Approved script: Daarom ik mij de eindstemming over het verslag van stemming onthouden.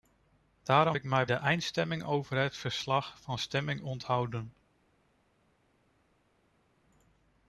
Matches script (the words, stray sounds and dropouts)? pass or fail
pass